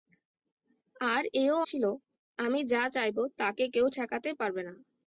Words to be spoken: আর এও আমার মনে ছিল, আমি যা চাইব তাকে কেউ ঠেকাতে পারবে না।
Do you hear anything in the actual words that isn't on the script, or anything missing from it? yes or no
yes